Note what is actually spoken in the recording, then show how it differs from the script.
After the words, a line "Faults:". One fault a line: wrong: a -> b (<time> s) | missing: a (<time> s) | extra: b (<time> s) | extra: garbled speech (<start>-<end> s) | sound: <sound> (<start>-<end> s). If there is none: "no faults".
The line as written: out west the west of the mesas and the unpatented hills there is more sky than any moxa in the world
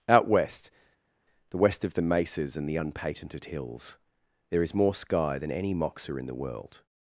out west the west of the mesas and the unpatented hills there is more sky than any moxa in the world
Faults:
no faults